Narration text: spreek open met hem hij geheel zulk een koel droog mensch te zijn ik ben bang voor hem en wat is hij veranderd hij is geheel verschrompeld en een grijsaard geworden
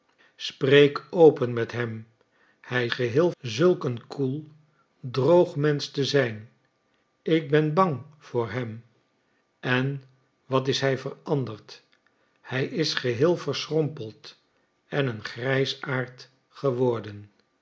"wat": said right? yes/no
yes